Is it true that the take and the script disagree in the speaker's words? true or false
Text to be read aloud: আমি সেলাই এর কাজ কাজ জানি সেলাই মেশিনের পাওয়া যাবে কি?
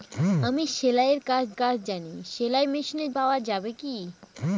false